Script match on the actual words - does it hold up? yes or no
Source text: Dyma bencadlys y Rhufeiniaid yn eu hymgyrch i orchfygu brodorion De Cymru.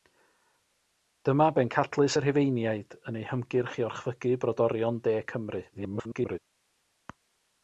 no